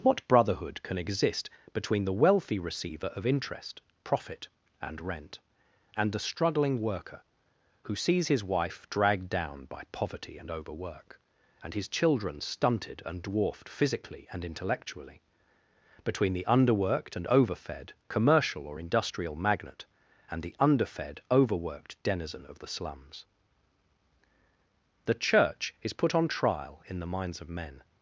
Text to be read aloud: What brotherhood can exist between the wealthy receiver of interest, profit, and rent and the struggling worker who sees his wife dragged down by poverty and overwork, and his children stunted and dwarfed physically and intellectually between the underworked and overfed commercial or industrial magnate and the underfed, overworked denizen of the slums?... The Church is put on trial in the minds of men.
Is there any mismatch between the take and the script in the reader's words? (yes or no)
no